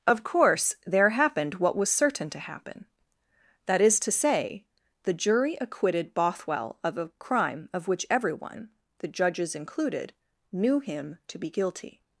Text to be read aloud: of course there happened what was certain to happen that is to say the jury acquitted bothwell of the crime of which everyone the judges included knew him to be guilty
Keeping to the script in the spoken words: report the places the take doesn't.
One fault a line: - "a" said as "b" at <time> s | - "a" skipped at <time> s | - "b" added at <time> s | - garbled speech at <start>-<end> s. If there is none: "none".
- "the" said as "a" at 7.0 s